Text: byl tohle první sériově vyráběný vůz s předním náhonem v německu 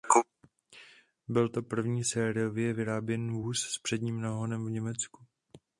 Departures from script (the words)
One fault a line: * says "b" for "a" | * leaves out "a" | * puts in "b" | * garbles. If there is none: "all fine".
* says "to" for "tohle"